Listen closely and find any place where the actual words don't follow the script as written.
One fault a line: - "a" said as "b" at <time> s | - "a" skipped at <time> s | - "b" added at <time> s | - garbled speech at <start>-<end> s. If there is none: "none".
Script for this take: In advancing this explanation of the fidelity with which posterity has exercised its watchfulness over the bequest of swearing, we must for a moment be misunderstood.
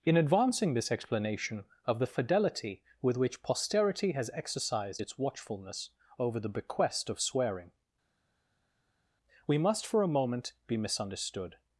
none